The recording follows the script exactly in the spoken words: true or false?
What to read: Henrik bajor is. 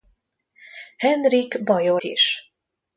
true